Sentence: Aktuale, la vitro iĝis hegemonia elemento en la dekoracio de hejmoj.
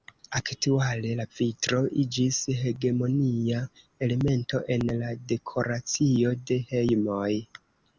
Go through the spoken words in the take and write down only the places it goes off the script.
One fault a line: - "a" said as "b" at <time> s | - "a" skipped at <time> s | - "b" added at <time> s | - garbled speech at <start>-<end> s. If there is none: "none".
none